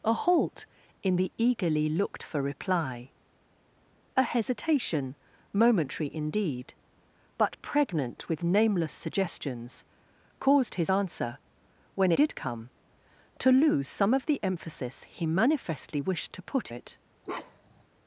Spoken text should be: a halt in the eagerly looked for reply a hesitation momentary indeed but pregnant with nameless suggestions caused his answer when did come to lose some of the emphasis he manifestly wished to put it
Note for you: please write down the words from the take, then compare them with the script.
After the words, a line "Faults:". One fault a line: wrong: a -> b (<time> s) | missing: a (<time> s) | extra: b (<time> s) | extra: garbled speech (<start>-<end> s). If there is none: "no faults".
a halt in the eagerly looked for reply a hesitation momentary indeed but pregnant with nameless suggestions caused his answer when did come to lose some of the emphasis he manifestly wished to put it
Faults:
no faults